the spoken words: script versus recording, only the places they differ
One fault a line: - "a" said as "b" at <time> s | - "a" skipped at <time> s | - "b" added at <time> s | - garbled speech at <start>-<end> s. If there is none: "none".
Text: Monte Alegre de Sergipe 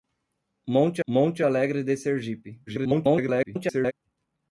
- "monte" added at 1.1 s
- garbled speech at 2.7-3.9 s